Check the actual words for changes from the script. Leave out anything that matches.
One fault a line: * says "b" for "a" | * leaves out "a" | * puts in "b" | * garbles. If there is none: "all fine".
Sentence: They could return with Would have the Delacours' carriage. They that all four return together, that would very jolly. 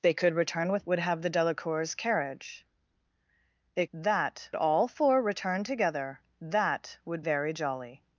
all fine